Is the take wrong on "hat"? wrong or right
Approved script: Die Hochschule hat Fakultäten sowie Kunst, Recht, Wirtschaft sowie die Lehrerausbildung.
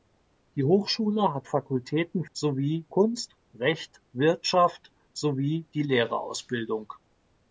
right